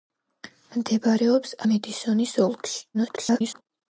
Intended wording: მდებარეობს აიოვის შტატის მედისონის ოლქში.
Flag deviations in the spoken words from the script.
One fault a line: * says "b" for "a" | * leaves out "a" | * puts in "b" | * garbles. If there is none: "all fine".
* leaves out "აიოვის შტატის"
* garbles